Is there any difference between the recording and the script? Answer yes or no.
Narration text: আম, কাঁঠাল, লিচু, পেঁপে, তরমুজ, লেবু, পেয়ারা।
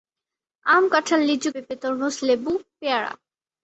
no